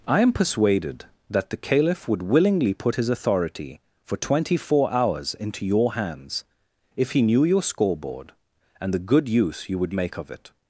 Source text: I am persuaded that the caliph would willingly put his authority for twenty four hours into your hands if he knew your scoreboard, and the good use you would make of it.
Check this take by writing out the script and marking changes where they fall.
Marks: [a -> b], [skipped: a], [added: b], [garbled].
I am persuaded that the caliph would willingly put his authority for twenty four hours into your hands if he knew your scoreboard, and the good use you would make of it.